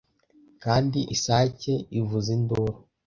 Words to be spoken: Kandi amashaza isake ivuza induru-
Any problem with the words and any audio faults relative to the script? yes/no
yes